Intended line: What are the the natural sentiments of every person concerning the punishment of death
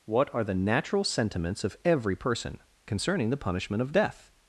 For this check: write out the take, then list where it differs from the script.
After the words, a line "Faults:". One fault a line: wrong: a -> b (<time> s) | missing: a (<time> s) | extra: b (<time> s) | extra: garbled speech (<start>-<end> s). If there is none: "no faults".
What are the natural sentiments of every person concerning the punishment of death
Faults:
missing: the (0.6 s)